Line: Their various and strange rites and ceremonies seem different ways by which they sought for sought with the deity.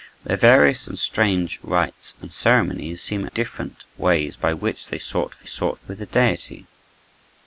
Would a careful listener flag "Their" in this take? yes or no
no